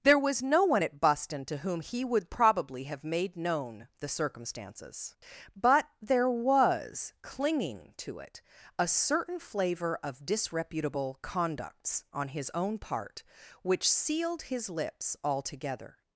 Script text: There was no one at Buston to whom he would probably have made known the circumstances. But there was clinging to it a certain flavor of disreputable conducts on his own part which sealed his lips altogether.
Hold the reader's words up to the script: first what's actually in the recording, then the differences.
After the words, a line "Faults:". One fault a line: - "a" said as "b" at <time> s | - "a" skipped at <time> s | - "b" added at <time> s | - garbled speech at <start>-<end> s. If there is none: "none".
There was no one at Buston to whom he would probably have made known the circumstances. But there was clinging to it a certain flavor of disreputable conducts on his own part which sealed his lips altogether.
Faults:
none